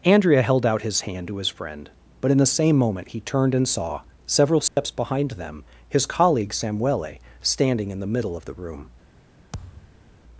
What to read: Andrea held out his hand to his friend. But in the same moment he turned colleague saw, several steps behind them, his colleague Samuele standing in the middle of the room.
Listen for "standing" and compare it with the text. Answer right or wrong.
right